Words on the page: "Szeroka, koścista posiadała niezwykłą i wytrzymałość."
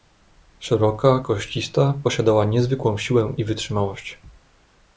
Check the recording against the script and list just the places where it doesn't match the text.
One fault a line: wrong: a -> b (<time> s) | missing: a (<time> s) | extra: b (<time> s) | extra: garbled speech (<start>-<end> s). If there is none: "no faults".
extra: siłę (3.0 s)